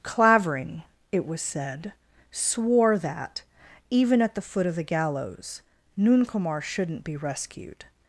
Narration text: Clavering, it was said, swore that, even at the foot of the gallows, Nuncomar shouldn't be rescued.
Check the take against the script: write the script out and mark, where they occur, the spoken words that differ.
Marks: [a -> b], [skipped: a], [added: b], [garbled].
Clavering, it was said, swore that, even at the foot of the gallows, Nuncomar shouldn't be rescued.